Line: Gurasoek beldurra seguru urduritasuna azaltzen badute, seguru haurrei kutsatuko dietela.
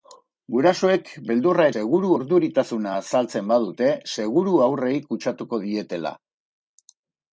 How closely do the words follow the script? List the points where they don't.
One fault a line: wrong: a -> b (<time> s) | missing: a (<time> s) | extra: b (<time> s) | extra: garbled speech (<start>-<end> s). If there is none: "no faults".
no faults